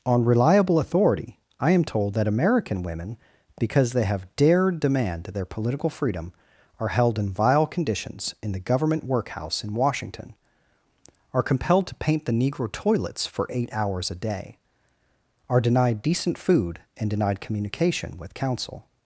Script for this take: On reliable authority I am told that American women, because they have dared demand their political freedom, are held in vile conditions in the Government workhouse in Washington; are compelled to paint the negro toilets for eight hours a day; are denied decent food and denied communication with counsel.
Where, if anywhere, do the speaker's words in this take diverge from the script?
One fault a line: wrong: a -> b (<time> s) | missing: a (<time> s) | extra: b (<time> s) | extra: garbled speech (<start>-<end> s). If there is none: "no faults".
no faults